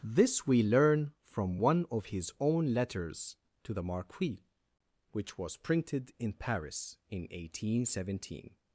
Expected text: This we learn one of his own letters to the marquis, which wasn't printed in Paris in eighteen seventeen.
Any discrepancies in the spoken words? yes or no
yes